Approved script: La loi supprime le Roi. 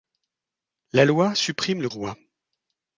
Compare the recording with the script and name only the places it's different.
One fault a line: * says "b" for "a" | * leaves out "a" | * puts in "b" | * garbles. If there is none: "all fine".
all fine